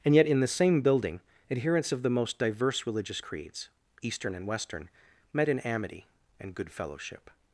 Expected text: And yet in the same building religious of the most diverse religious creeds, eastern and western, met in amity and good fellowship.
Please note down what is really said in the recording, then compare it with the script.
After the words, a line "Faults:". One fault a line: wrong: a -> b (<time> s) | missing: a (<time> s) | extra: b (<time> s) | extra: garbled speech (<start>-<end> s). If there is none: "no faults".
And yet in the same building adherents of the most diverse religious creeds, eastern and western, met in amity and good fellowship.
Faults:
wrong: religious -> adherents (1.5 s)